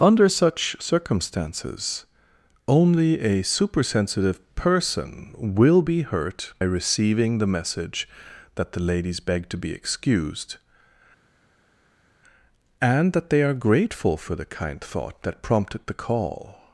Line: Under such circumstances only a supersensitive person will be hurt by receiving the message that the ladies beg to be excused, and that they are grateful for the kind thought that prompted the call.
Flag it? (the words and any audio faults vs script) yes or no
yes